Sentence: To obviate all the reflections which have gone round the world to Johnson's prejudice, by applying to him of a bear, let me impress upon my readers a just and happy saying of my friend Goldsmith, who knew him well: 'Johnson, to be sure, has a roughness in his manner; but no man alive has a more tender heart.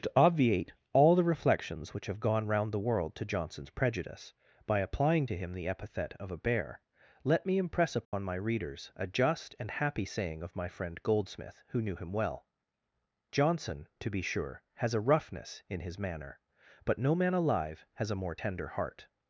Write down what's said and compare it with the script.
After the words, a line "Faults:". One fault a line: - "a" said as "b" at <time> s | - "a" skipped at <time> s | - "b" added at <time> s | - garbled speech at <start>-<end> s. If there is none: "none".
To obviate all the reflections which have gone round the world to Johnson's prejudice, by applying to him the epithet of a bear, let me impress upon my readers a just and happy saying of my friend Goldsmith, who knew him well: 'Johnson, to be sure, has a roughness in his manner; but no man alive has a more tender heart.
Faults:
- "the epithet" added at 5.5 s